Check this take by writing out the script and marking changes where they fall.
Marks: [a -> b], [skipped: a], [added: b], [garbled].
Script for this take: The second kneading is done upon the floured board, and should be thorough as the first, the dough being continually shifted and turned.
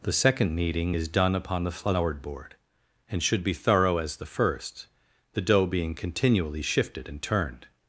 The second kneading is done upon the floured board, and should be thorough as the first, the dough being continually shifted and turned.